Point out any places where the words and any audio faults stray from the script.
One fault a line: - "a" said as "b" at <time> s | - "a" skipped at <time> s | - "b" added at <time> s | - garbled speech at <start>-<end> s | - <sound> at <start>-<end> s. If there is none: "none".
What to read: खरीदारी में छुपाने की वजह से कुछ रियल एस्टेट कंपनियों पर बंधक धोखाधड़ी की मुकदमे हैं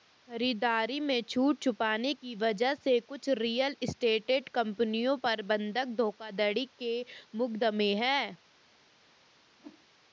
- "छूट" added at 1.2 s
- "की" said as "के" at 6.8 s
- whoosh at 9.5-9.9 s